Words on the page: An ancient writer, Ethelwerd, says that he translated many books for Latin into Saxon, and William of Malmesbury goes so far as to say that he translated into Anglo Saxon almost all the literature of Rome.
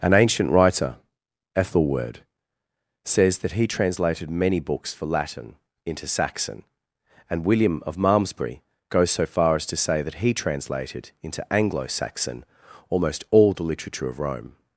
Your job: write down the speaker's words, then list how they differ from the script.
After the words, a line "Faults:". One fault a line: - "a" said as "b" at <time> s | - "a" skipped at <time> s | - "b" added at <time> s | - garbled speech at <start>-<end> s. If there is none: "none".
An ancient writer, Ethelwerd, says that he translated many books for Latin into Saxon, and William of Malmesbury goes so far as to say that he translated into Anglo Saxon almost all the literature of Rome.
Faults:
none